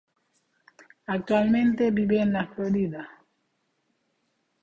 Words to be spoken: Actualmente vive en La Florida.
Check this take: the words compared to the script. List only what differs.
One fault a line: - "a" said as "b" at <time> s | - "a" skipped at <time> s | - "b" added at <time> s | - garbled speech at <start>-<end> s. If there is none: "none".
none